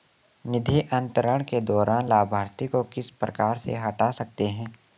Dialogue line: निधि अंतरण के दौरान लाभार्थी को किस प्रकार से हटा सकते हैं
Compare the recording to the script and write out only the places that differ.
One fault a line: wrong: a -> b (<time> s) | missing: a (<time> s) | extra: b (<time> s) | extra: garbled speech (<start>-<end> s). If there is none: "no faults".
no faults